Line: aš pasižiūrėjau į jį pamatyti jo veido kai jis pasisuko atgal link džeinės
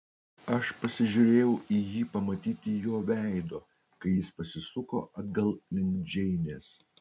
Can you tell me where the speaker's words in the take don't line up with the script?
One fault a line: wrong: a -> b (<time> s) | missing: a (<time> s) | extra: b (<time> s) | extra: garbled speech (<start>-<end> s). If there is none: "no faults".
no faults